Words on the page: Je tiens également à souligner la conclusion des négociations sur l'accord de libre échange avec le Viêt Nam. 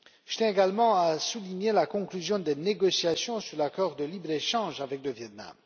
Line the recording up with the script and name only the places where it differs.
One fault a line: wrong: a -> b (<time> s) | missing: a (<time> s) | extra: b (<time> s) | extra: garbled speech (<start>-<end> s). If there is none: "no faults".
no faults